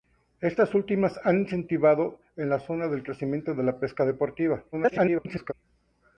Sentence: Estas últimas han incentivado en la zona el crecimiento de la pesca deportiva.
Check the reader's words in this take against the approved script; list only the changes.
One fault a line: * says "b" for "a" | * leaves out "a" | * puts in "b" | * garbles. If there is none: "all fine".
* garbles